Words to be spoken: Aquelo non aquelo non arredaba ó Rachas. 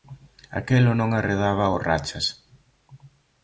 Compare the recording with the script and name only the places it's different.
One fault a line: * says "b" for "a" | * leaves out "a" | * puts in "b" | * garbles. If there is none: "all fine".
* leaves out "aquelo non"